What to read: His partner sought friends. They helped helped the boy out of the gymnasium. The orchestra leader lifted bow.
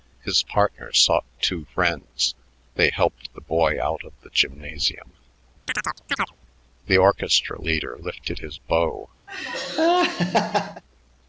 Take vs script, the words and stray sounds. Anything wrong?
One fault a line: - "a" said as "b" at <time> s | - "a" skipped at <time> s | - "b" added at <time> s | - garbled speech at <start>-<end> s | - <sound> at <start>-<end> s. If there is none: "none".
- "two" added at 1.4 s
- "helped" skipped at 3.3 s
- chirp at 5.7-6.4 s
- "his" added at 8.4 s
- laugh at 9.3-10.8 s